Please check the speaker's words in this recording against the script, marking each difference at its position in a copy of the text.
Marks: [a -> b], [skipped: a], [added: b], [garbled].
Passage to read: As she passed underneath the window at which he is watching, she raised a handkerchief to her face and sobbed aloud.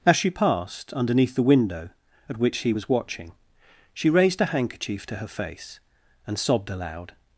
As she passed underneath the window at which he [is -> was] watching, she raised a handkerchief to her face and sobbed aloud.